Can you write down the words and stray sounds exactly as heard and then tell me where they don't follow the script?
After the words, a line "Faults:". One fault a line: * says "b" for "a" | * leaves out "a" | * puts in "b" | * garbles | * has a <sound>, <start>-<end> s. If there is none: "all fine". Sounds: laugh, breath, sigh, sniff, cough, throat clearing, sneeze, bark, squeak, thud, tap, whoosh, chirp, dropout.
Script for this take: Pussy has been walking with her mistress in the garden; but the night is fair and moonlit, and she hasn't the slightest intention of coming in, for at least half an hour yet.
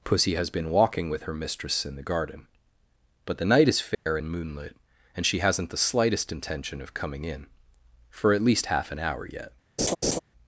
Pussy has been walking with her mistress in the garden; but the night is fair and moonlit, and she hasn't the slightest intention of coming in, for at least half an hour yet.
Faults:
* has a dropout, 3.9-4.1 s
* has a laugh, 9.8-10.2 s